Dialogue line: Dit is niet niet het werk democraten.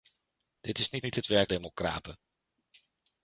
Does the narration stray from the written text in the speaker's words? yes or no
no